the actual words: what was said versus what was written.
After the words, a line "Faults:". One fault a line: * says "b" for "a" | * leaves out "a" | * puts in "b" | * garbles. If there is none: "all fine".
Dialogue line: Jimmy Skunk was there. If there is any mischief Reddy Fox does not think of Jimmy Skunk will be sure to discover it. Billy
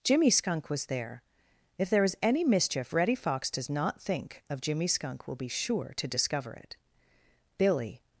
Jimmy Skunk was there. If there is any mischief Reddy Fox does not think of Jimmy Skunk will be sure to discover it. Billy
Faults:
all fine